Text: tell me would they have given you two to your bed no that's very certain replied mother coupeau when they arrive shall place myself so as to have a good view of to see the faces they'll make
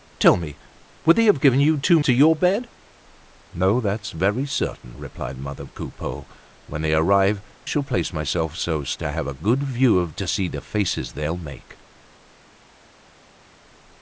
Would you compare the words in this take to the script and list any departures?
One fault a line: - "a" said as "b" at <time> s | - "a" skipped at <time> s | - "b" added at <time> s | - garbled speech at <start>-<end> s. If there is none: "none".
none